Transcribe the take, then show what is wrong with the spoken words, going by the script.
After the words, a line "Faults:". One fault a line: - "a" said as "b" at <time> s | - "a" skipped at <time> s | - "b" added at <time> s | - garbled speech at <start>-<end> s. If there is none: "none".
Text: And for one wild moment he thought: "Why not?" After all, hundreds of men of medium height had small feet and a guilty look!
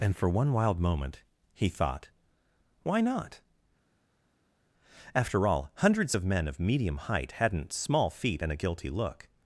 And for one wild moment he thought: "Why not?" After all, hundreds of men of medium height hadn't small feet and a guilty look!
Faults:
- "had" said as "hadn't" at 7.3 s